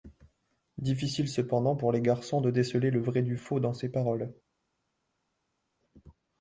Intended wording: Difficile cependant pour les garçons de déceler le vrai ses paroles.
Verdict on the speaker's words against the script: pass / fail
fail